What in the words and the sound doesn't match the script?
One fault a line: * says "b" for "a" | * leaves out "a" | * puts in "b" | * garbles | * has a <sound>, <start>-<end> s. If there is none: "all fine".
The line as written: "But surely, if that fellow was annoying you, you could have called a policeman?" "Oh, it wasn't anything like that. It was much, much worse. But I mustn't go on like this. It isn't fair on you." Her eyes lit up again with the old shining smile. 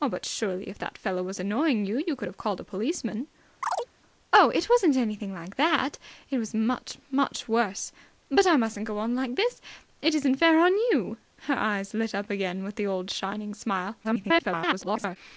* has a chirp, 3.6-3.9 s
* garbles